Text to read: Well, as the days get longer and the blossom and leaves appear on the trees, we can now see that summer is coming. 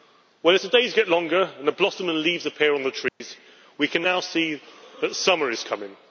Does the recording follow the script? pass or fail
pass